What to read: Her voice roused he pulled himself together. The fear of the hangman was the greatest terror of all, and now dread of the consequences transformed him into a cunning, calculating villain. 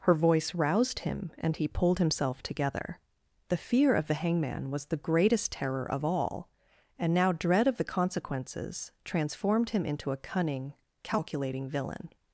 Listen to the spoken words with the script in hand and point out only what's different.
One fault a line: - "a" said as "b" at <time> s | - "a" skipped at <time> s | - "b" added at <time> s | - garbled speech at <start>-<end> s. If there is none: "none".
- "him and" added at 1.0 s